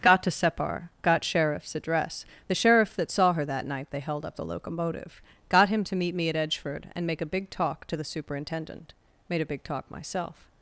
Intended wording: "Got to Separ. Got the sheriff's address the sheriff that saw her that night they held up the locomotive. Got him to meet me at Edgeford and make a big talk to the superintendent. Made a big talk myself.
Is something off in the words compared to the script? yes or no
yes